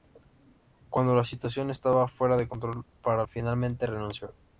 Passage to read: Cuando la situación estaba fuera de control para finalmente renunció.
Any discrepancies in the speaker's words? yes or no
no